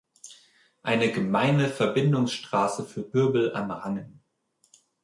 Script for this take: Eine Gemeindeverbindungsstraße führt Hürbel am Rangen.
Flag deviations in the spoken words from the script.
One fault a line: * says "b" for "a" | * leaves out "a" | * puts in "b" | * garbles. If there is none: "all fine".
all fine